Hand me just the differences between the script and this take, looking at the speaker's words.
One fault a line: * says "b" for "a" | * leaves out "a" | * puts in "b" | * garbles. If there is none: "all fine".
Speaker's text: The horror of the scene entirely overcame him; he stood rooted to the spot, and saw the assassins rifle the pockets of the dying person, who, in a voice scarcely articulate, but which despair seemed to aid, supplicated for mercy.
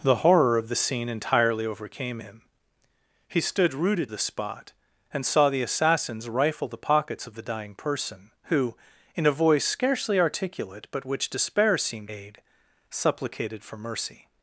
* leaves out "to"
* leaves out "to"